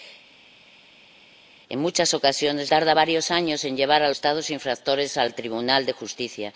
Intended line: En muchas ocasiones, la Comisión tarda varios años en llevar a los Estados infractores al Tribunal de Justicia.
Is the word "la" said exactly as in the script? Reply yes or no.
no